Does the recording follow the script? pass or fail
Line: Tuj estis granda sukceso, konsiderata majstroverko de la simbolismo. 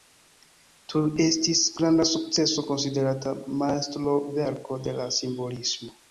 pass